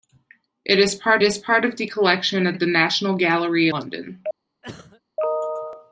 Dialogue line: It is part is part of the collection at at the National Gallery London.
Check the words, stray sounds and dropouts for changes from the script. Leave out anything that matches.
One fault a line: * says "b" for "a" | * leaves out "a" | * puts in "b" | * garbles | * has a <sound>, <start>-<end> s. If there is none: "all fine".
* has a cough, 4.6-5.0 s